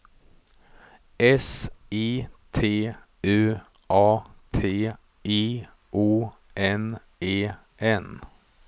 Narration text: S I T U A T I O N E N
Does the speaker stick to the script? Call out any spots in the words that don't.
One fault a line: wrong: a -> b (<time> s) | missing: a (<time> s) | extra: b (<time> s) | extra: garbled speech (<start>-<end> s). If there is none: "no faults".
no faults